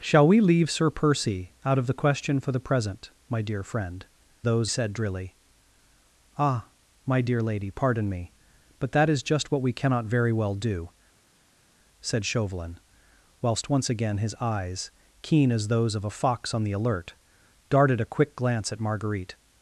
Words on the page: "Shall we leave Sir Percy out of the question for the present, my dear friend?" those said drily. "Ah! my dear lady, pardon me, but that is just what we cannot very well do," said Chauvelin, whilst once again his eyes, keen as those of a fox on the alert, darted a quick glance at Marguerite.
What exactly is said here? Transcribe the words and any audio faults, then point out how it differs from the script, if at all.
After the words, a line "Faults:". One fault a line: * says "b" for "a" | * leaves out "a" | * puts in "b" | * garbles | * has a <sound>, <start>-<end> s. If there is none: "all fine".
"Shall we leave Sir Percy out of the question for the present, my dear friend?" those said drily. "Ah! my dear lady, pardon me, but that is just what we cannot very well do," said Chauvelin, whilst once again his eyes, keen as those of a fox on the alert, darted a quick glance at Marguerite.
Faults:
all fine